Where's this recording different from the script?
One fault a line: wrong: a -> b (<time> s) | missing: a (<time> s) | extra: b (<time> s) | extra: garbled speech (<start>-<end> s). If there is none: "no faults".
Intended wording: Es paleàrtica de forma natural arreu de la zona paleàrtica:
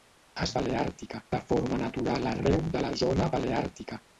no faults